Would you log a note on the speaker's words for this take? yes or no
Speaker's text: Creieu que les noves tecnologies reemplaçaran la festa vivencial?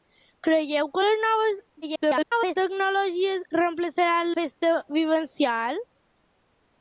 yes